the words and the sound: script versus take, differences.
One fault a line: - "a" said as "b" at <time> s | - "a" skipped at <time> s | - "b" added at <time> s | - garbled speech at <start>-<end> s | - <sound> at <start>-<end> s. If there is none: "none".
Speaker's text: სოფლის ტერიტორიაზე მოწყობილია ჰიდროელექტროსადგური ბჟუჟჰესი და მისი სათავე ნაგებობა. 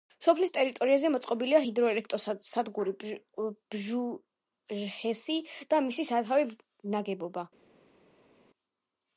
none